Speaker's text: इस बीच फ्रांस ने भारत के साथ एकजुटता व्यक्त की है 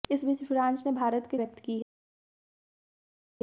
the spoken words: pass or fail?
fail